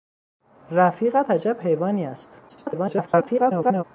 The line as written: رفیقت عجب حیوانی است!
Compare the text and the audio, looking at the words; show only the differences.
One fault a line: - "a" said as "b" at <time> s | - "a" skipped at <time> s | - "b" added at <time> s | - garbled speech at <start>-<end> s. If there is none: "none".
- garbled speech at 2.5-3.8 s